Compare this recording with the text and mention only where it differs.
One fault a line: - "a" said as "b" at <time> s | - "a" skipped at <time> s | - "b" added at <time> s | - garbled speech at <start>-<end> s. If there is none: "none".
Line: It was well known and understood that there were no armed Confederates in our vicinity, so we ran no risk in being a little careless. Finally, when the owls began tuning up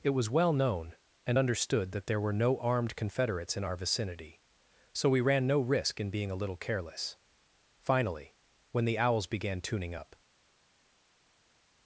none